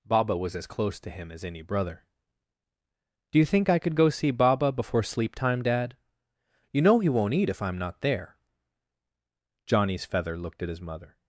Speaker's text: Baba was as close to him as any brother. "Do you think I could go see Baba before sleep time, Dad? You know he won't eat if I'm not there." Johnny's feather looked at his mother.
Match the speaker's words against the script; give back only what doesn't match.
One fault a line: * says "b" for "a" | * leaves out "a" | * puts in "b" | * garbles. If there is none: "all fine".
all fine